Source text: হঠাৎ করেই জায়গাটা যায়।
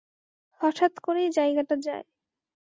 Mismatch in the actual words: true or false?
false